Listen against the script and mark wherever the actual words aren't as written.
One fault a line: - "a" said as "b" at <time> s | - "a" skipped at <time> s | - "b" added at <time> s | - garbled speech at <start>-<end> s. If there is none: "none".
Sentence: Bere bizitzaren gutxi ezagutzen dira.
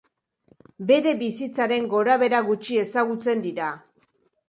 - "gorabehera" added at 1.9 s